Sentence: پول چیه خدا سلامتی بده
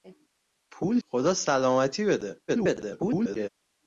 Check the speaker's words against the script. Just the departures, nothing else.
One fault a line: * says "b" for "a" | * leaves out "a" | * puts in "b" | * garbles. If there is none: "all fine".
* leaves out "چیه"
* garbles